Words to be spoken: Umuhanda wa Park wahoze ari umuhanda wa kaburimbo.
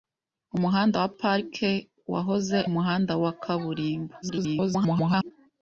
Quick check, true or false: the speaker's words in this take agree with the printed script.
false